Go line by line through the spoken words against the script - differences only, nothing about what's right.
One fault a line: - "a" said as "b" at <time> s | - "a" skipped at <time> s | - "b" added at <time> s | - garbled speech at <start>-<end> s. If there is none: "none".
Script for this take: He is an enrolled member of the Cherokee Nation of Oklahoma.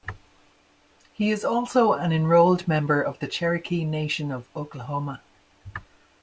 - "also" added at 1.4 s